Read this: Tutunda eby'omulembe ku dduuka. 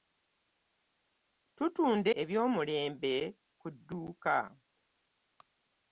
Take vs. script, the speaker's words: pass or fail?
pass